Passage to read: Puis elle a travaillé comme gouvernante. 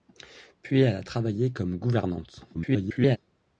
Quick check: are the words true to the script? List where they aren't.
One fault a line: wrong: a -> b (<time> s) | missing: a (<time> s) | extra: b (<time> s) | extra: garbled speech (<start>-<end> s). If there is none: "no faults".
extra: garbled speech (2.5-3.2 s)